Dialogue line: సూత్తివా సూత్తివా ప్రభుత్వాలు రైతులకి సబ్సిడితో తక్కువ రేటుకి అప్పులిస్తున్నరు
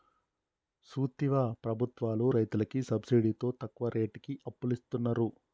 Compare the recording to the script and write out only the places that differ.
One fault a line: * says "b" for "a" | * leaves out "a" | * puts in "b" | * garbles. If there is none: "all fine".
* leaves out "సూత్తివా"